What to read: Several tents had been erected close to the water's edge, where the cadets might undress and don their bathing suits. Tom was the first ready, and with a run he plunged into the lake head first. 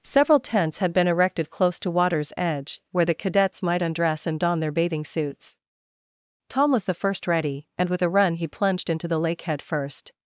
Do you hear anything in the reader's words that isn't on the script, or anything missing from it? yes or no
yes